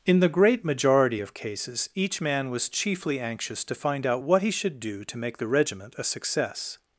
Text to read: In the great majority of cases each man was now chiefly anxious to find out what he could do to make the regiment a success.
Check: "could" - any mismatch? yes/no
yes